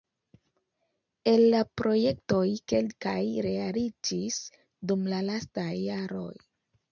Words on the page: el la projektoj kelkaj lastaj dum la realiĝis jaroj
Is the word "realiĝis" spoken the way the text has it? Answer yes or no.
no